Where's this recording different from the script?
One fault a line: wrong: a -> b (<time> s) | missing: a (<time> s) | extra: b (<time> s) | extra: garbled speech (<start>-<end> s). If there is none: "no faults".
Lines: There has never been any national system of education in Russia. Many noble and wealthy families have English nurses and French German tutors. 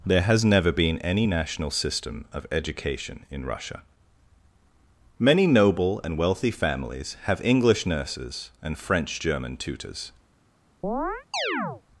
no faults